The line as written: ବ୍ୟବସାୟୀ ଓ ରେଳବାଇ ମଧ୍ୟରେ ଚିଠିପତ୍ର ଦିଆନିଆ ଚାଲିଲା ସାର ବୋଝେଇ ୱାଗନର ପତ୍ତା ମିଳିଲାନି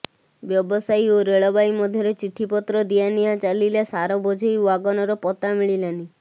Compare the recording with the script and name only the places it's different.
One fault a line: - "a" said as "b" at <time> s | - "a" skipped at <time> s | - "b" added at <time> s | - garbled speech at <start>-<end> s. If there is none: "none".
none